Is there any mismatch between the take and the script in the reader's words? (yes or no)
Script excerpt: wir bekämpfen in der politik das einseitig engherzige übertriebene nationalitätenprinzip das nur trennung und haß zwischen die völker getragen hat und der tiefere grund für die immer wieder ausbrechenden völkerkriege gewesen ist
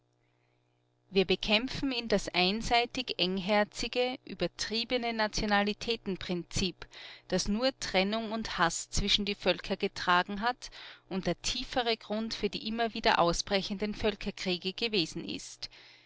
yes